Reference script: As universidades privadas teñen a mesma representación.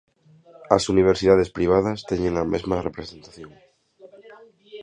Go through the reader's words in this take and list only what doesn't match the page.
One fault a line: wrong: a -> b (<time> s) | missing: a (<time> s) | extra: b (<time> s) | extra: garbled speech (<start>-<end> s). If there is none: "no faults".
no faults